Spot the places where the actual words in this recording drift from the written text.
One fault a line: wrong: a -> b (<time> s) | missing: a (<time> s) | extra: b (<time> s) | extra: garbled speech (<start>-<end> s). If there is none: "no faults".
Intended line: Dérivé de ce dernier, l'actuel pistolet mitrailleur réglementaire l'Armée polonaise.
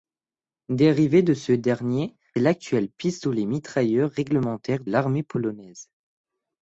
no faults